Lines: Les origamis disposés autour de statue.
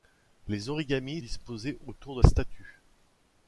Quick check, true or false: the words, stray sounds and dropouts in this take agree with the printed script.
true